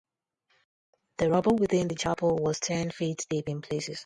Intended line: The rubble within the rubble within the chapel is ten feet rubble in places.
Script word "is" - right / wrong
wrong